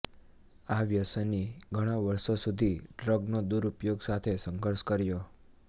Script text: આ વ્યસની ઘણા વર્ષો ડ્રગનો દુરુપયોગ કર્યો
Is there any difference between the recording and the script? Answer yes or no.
yes